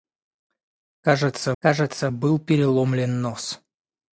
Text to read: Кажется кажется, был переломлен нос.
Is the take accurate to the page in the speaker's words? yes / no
yes